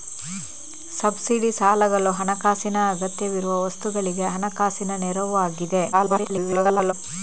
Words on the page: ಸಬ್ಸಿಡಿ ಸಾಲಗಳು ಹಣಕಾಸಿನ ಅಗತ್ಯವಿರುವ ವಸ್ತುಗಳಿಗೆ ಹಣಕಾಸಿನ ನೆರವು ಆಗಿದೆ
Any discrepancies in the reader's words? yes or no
yes